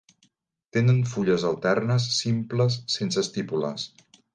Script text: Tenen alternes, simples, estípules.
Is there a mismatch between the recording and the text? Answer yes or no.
yes